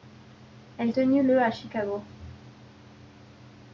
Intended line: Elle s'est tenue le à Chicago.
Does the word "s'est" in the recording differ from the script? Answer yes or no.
yes